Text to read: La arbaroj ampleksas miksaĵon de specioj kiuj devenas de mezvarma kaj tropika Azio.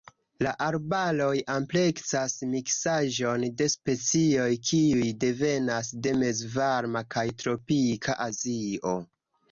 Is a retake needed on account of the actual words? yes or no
no